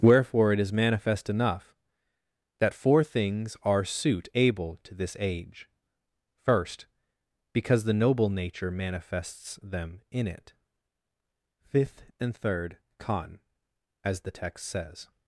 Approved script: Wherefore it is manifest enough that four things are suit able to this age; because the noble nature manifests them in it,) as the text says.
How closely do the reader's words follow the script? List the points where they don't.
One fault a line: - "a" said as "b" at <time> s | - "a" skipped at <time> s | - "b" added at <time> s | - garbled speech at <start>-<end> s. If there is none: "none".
- "first" added at 6.4 s
- "fifth and third con" added at 11.6 s